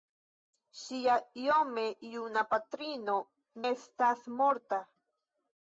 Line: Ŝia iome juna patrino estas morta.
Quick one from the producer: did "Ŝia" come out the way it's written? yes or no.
yes